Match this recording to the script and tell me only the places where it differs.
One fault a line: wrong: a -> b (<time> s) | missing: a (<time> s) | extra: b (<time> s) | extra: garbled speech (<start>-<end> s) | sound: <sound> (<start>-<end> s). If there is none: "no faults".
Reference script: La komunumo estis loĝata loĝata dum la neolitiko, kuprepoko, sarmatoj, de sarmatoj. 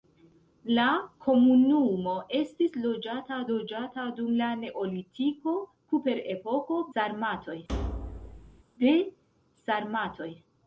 sound: thud (7.7-8.6 s)